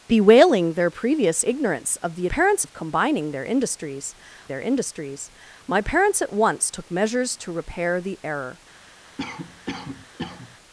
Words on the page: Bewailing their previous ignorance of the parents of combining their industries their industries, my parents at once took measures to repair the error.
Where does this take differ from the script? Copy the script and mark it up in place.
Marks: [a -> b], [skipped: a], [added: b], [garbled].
Bewailing their previous ignorance of the parents of combining their industries their industries, my parents at once took measures to repair the error.